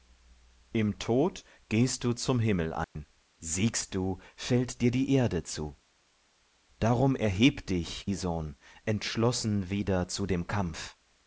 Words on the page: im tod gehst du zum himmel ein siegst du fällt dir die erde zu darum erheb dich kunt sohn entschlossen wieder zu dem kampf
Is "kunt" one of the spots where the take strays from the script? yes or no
yes